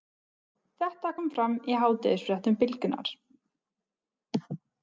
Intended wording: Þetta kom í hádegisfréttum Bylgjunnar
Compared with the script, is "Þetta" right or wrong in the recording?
right